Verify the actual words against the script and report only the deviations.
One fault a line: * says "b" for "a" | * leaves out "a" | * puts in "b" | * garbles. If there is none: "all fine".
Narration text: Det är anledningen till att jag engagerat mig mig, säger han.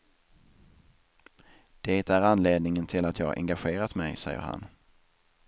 * leaves out "mig"